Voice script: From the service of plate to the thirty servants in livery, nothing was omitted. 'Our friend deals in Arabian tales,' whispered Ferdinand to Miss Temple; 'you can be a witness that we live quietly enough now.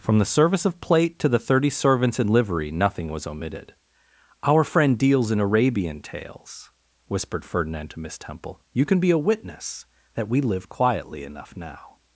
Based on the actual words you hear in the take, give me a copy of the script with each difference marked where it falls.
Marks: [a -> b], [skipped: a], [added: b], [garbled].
From the service of plate to the thirty servants in livery, nothing was omitted. 'Our friend deals in Arabian tales,' whispered Ferdinand to Miss Temple; 'you can be a witness that we live quietly enough now.